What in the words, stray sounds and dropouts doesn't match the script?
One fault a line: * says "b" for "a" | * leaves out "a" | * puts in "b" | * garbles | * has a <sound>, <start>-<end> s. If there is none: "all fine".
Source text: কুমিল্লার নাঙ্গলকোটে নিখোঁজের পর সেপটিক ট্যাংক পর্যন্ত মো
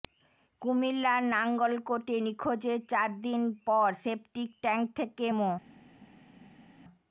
* puts in "চার দিন"
* says "থেকে" for "পর্যন্ত"